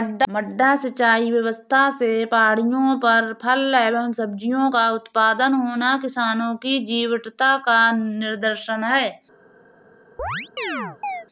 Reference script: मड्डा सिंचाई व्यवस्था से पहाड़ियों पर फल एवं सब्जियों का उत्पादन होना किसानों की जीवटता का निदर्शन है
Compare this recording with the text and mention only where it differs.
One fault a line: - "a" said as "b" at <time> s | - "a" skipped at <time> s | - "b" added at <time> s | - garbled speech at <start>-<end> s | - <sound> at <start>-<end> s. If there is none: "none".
- chirp at 10.2-11.3 s